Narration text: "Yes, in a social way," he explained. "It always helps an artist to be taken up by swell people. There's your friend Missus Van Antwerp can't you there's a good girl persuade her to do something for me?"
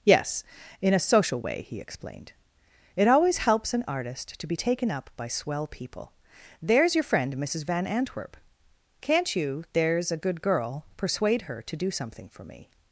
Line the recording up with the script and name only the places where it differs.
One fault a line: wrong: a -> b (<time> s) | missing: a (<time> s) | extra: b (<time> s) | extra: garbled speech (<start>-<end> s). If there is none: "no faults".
no faults